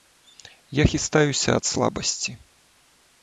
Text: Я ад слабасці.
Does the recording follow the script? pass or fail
fail